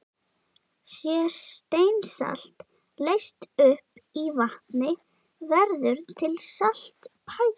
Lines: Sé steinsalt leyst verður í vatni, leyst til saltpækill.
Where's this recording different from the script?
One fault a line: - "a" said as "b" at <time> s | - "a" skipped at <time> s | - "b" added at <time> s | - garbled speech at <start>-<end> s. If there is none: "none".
- "verður" said as "upp" at 3.7 s
- "leyst" said as "verður" at 5.5 s